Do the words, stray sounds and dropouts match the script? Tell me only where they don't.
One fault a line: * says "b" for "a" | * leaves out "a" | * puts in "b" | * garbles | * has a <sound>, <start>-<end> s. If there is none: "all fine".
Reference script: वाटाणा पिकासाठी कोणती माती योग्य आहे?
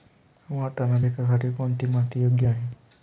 all fine